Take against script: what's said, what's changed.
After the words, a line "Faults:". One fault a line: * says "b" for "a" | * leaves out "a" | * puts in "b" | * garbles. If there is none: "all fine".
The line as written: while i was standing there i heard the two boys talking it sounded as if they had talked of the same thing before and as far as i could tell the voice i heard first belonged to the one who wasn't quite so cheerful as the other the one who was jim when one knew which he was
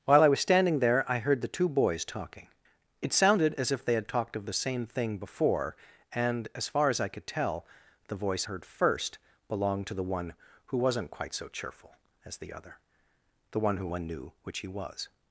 while i was standing there i heard the two boys talking it sounded as if they had talked of the same thing before and as far as i could tell the voice heard first belonged to the one who wasn't quite so cheerful as the other the one who one knew which he was
Faults:
* leaves out "i"
* leaves out "was jim when"